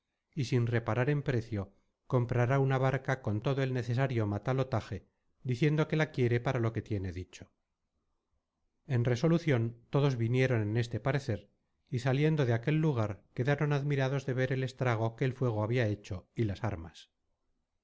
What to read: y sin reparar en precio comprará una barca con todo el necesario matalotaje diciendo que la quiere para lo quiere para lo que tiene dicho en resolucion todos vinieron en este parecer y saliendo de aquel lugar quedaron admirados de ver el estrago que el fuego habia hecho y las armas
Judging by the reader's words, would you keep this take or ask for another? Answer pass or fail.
fail